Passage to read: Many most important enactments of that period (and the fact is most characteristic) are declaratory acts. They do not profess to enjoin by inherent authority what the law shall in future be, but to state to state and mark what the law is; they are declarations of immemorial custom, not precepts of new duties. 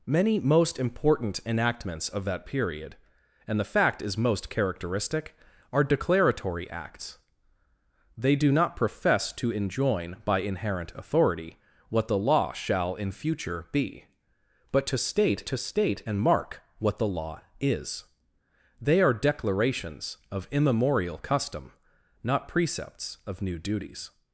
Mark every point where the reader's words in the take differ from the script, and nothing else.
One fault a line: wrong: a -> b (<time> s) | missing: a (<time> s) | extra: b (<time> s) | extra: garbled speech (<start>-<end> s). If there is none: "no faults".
no faults